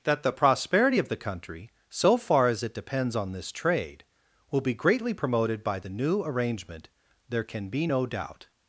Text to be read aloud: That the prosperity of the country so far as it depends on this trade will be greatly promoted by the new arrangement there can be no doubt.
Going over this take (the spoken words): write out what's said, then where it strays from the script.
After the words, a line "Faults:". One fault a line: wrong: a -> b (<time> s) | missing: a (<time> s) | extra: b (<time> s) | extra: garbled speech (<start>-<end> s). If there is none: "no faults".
That the prosperity of the country so far as it depends on this trade will be greatly promoted by the new arrangement there can be no doubt.
Faults:
no faults